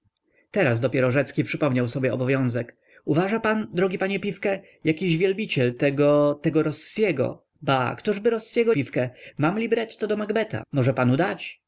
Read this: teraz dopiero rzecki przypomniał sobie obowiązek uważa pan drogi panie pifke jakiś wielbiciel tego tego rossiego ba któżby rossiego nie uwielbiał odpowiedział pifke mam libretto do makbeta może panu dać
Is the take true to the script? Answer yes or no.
no